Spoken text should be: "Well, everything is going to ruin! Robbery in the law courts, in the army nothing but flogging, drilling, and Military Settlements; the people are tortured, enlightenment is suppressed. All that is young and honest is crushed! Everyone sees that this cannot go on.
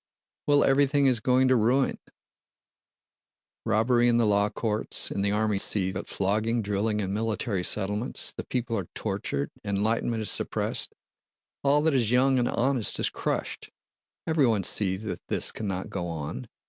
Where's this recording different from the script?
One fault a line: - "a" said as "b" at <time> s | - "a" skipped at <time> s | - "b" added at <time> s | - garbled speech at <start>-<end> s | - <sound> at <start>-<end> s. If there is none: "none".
- "nothing" said as "sees" at 5.6 s